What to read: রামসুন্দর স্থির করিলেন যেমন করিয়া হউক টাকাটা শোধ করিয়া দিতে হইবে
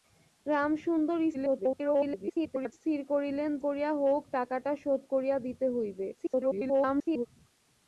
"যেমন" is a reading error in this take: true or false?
true